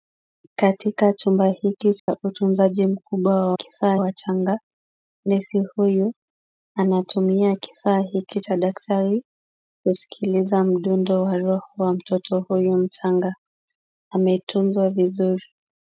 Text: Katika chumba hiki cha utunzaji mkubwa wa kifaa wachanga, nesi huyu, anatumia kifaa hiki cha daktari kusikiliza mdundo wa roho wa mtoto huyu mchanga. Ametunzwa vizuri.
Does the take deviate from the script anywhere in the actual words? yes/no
no